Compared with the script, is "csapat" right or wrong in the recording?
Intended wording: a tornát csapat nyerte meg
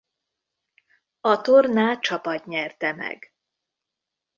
right